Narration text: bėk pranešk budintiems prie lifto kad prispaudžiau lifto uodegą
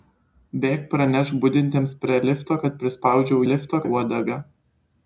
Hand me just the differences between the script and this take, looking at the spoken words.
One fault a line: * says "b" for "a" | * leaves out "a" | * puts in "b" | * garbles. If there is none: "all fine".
all fine